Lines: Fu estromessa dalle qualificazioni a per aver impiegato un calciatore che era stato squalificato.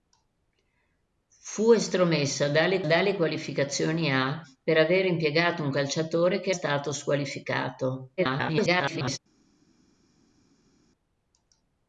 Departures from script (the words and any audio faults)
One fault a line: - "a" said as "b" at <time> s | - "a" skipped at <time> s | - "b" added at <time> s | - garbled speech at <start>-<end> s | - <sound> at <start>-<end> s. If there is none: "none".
- "dalle" added at 2.8 s
- "era" skipped at 6.5 s
- garbled speech at 8.2-9.2 s